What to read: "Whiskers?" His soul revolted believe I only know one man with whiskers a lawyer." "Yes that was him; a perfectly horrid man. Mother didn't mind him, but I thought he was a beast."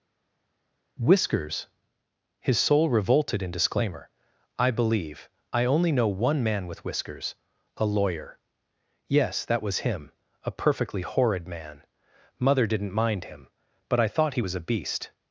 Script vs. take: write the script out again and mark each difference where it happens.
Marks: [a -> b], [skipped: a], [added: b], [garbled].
"Whiskers?" His soul revolted [added: in disclaimer I] believe I only know one man with whiskers a lawyer." "Yes that was him; a perfectly horrid man. Mother didn't mind him, but I thought he was a beast."